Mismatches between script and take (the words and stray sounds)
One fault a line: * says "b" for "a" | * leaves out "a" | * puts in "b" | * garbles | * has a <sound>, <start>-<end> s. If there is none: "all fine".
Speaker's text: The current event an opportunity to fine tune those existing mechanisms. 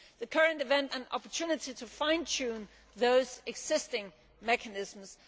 all fine